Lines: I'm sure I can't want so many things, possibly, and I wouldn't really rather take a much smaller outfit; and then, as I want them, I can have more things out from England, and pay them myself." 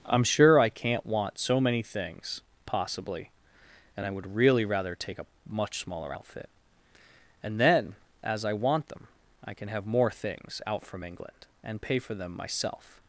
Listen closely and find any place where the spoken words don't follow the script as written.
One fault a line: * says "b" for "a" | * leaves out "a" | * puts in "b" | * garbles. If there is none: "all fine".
* says "would" for "wouldn't"
* puts in "for"